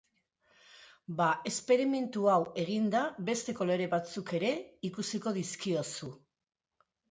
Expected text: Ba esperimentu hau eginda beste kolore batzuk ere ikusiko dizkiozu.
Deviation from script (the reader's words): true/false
false